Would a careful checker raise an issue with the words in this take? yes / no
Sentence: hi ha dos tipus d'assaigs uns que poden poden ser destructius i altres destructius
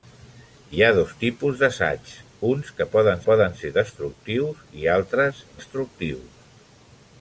no